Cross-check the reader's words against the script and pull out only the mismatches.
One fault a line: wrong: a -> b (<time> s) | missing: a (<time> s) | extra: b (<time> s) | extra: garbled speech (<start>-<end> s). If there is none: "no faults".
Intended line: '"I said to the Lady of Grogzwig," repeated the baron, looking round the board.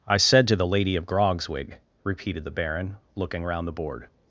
no faults